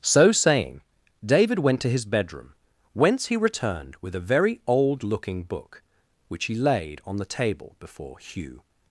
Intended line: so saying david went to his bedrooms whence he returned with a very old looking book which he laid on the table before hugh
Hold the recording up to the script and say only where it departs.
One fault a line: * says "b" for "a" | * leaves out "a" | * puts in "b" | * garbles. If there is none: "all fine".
* says "bedroom" for "bedrooms"